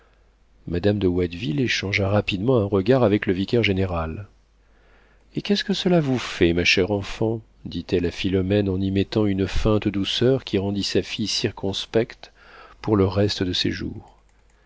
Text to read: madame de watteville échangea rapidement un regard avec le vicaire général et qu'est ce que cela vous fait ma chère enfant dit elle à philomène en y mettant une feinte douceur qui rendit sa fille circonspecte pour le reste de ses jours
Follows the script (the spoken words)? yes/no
yes